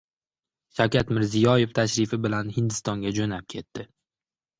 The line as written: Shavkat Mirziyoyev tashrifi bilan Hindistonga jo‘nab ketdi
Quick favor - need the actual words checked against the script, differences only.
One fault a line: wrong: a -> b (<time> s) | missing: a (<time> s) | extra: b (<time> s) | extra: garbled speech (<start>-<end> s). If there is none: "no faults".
no faults